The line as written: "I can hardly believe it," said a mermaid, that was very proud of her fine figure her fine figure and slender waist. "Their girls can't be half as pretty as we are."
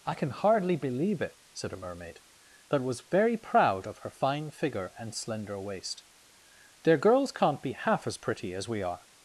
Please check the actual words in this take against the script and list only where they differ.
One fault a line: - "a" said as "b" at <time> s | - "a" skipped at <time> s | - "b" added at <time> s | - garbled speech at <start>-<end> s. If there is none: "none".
- "her fine figure" skipped at 4.9 s